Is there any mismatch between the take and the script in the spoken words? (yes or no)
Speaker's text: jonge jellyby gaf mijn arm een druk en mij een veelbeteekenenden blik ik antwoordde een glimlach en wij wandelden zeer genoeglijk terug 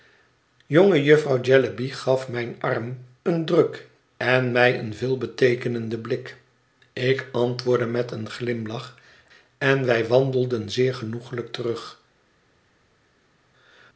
yes